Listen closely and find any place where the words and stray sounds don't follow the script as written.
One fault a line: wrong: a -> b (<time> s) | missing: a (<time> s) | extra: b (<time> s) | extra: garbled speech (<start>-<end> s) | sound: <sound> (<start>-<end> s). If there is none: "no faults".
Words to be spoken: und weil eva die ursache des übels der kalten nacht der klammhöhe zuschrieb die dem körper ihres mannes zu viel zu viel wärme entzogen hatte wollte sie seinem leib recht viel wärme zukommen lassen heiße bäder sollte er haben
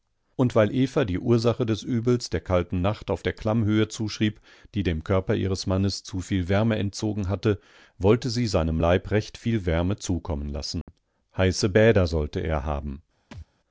extra: auf (3.1 s)
missing: zu viel (6.5 s)
sound: dropout (10.8-10.9 s)
sound: thud (13.3-13.5 s)